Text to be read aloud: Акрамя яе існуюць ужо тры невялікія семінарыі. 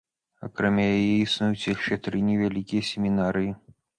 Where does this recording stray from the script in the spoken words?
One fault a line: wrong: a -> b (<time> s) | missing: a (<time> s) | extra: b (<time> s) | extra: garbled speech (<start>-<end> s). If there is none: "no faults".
wrong: ужо -> яшчэ (1.8 s)